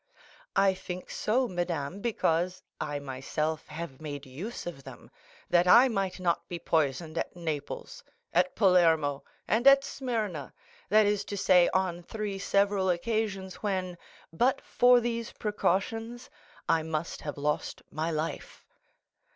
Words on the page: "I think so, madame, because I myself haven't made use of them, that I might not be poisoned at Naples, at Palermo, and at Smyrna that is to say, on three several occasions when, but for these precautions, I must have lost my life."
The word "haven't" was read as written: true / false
false